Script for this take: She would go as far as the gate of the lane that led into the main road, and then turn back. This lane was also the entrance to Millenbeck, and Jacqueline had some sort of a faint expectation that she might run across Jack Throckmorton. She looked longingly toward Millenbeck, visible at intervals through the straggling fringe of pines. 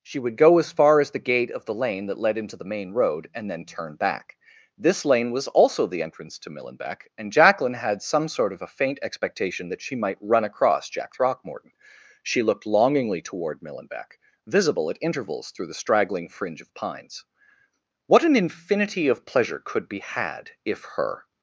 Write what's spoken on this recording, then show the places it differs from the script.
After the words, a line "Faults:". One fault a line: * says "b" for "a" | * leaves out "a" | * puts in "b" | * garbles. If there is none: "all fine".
She would go as far as the gate of the lane that led into the main road, and then turn back. This lane was also the entrance to Millenbeck, and Jacqueline had some sort of a faint expectation that she might run across Jack Throckmorton. She looked longingly toward Millenbeck, visible at intervals through the straggling fringe of pines. What an infinity of pleasure could be had, if her
Faults:
* puts in "What an infinity of pleasure could be had if her"